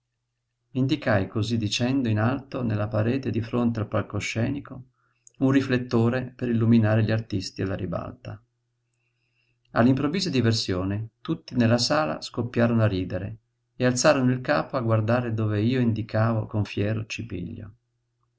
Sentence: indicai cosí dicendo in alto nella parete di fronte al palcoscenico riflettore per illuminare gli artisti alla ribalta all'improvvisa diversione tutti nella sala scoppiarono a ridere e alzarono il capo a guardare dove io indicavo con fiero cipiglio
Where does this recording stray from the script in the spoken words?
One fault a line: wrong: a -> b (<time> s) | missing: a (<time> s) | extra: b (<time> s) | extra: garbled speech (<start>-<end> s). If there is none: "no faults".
extra: un (5.4 s)